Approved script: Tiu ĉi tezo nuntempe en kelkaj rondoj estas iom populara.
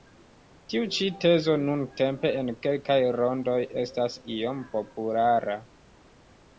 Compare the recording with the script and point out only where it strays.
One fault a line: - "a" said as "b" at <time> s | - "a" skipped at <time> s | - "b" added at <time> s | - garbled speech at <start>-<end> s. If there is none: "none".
none